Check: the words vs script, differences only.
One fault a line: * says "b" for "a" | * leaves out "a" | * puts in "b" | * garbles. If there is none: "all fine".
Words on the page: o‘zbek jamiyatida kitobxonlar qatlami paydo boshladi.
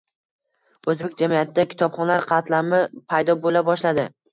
* puts in "bo‘la"